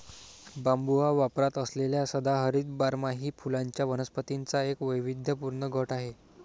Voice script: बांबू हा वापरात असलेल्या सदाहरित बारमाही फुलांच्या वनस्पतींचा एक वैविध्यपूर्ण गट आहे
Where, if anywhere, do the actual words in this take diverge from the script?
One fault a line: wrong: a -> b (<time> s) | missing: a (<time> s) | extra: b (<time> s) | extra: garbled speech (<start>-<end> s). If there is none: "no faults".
no faults